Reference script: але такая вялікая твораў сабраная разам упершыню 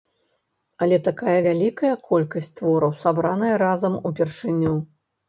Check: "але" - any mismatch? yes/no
no